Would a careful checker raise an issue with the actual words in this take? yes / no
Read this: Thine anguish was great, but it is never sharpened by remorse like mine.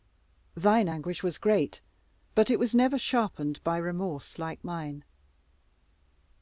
yes